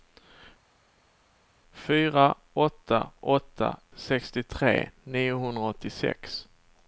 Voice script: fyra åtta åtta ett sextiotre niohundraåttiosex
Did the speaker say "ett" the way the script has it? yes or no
no